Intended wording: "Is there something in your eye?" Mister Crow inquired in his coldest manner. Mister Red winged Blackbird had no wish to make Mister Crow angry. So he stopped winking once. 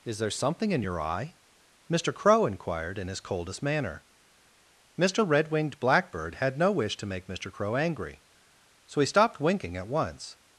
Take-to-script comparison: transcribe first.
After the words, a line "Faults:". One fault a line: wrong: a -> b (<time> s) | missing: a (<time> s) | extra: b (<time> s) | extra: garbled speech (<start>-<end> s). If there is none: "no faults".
"Is there something in your eye?" Mister Crow inquired in his coldest manner. Mister Red winged Blackbird had no wish to make Mister Crow angry. So he stopped winking at once.
Faults:
extra: at (9.8 s)